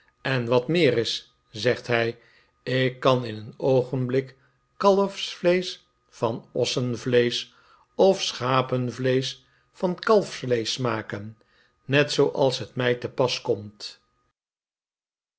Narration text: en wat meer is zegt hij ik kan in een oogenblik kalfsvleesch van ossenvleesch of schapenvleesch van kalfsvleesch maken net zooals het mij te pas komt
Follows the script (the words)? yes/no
yes